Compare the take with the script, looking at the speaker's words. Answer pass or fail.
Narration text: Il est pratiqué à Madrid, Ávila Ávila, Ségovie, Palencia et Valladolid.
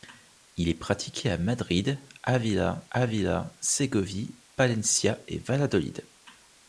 pass